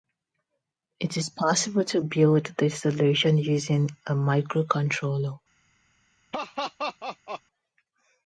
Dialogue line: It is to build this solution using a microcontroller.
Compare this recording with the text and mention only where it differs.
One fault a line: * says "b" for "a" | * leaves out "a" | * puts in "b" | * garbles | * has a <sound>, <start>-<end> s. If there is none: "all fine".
* puts in "possible"
* has a laugh, 6.3-7.4 s